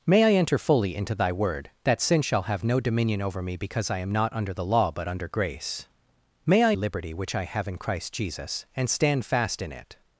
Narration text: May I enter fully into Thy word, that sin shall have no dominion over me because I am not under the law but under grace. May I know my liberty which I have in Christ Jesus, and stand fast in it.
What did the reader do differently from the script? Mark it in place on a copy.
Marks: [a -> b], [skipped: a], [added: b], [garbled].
May I enter fully into Thy word, that sin shall have no dominion over me because I am not under the law but under grace. May I [skipped: know my] liberty which I have in Christ Jesus, and stand fast in it.